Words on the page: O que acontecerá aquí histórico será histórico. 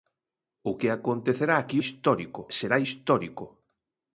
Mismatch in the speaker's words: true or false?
false